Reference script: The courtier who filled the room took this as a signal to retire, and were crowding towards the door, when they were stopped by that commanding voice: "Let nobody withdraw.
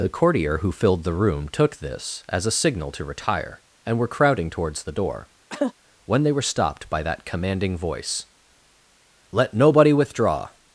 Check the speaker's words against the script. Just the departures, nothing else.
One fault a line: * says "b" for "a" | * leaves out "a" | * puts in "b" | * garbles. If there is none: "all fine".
all fine